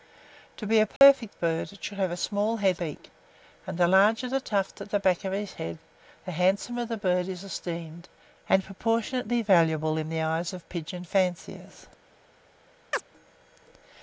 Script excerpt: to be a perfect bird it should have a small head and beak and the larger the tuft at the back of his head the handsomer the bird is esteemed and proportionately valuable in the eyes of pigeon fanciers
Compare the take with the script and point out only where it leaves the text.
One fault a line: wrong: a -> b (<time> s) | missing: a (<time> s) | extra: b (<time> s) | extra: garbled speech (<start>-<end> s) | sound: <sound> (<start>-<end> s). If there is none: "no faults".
sound: dropout (1.0-1.0 s)
missing: and (2.8 s)
sound: chirp (12.9-13.0 s)